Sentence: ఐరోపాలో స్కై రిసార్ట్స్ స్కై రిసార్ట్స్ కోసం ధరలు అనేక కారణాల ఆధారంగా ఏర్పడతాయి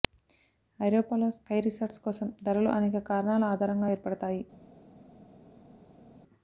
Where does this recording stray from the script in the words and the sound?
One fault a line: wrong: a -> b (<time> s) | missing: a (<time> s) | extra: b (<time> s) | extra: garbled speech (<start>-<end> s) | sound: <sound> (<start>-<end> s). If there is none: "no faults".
missing: స్కై రిసార్ట్స్ (2.0 s)